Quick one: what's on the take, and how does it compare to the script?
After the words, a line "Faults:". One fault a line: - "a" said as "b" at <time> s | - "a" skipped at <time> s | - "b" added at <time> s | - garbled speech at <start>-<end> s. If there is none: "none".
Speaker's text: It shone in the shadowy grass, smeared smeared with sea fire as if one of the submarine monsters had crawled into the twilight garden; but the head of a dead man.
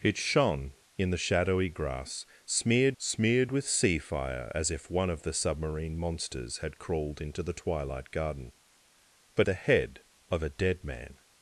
It shone in the shadowy grass, smeared smeared with sea fire as if one of the submarine monsters had crawled into the twilight garden; but the head of a dead man.
Faults:
none